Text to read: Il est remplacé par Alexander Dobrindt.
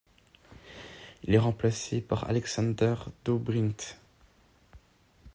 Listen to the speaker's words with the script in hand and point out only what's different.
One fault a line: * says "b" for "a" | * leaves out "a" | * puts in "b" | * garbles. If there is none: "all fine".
all fine